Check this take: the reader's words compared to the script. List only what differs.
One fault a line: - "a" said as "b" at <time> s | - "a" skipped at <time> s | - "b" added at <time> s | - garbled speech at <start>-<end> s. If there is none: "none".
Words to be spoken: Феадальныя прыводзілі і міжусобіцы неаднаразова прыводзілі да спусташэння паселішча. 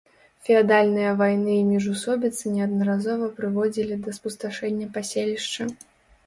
- "прыводзілі" said as "вайны" at 1.2 s